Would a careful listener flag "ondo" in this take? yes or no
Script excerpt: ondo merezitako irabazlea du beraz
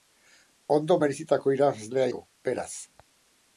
no